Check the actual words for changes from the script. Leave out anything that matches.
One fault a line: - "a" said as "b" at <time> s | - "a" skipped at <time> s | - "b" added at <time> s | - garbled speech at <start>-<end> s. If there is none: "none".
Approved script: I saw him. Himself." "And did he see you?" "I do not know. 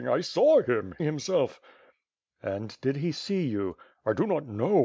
none